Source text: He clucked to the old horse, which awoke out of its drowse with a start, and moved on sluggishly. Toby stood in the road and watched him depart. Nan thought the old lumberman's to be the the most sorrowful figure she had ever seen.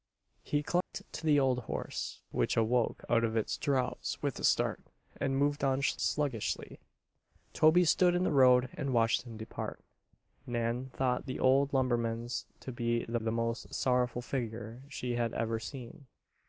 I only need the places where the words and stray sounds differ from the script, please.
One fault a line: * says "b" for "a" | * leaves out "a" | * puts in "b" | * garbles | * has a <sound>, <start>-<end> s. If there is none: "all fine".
* has a dropout, 0.8-0.9 s